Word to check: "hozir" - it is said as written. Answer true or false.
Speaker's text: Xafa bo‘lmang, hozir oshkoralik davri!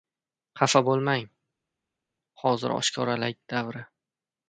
true